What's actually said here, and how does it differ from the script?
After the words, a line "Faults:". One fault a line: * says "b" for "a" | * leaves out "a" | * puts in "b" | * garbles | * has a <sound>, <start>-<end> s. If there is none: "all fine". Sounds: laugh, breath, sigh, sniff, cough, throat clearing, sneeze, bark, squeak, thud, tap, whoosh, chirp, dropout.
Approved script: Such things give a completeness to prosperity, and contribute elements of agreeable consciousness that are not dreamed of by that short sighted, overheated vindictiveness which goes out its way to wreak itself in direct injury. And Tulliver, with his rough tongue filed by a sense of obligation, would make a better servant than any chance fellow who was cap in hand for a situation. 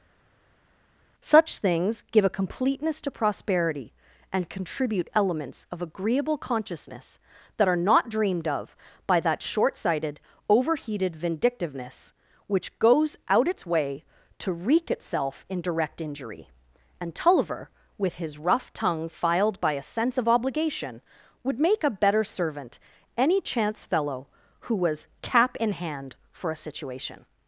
Such things give a completeness to prosperity, and contribute elements of agreeable consciousness that are not dreamed of by that short sighted, overheated vindictiveness which goes out its way to wreak itself in direct injury. And Tulliver, with his rough tongue filed by a sense of obligation, would make a better servant any chance fellow who was cap in hand for a situation.
Faults:
* leaves out "than"